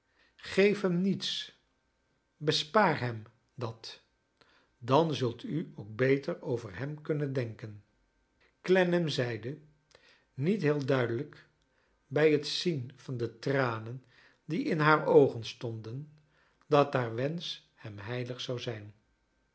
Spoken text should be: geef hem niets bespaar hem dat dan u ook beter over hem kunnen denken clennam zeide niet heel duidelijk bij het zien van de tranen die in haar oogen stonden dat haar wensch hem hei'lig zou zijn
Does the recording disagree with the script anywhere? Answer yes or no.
yes